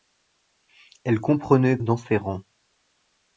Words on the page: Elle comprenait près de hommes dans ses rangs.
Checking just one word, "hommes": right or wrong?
wrong